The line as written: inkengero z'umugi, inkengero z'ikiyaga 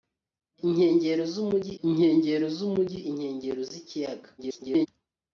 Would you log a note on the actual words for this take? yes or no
yes